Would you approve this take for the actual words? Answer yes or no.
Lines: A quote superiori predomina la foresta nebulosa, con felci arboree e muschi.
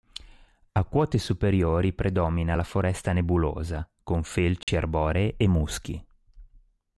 yes